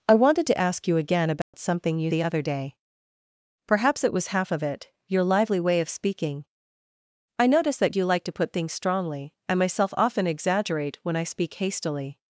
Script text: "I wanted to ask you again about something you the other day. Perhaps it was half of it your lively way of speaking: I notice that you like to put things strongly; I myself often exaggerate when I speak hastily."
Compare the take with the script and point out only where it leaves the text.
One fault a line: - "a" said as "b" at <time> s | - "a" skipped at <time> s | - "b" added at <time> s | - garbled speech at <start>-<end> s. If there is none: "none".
none